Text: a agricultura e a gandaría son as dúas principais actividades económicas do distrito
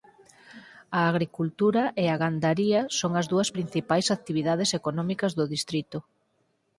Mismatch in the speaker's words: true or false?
false